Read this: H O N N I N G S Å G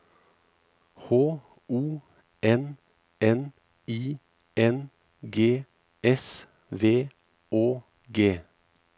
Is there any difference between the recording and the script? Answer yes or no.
yes